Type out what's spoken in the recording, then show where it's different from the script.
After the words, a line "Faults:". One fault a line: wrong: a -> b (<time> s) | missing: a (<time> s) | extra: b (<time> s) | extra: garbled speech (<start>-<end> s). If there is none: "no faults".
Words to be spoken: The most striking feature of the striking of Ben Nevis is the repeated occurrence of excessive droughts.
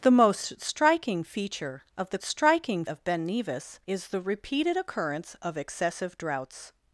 The most striking feature of the striking of Ben Nevis is the repeated occurrence of excessive droughts.
Faults:
no faults